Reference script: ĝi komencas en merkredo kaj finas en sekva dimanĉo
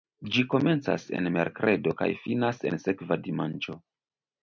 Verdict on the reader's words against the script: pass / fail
pass